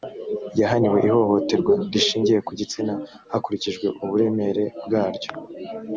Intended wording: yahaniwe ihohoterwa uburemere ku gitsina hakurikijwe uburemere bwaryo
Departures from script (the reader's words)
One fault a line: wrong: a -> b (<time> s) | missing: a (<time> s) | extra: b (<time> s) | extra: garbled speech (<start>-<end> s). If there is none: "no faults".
wrong: uburemere -> rishingiye (1.9 s)